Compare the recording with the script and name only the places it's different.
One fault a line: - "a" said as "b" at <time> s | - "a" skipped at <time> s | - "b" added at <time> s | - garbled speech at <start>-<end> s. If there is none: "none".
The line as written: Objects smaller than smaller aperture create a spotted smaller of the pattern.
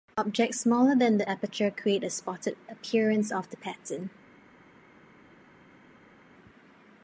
- "smaller" said as "the" at 1.2 s
- "smaller" said as "appearance" at 2.7 s